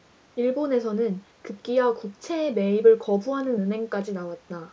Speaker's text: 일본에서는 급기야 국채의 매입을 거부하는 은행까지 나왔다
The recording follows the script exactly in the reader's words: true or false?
true